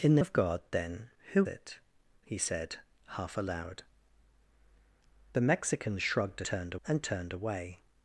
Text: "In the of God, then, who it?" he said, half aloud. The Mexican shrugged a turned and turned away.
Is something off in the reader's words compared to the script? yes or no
no